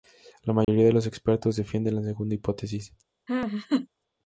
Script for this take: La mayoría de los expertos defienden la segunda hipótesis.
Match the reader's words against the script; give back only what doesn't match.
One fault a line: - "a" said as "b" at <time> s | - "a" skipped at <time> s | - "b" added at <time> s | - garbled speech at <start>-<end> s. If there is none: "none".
none